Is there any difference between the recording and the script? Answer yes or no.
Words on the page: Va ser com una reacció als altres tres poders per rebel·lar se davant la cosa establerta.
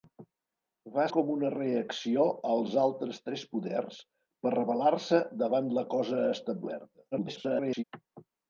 yes